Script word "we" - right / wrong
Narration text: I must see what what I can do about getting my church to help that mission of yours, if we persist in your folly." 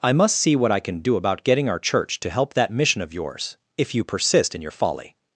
wrong